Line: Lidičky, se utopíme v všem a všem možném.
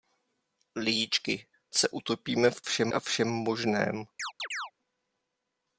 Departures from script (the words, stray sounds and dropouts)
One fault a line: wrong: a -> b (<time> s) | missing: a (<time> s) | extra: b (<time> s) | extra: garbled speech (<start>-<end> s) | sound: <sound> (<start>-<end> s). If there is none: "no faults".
sound: chirp (4.2-4.7 s)